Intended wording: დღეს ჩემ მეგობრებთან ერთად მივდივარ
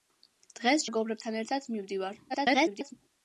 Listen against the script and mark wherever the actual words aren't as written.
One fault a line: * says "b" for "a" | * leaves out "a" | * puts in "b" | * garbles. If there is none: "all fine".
* leaves out "ჩემ"
* garbles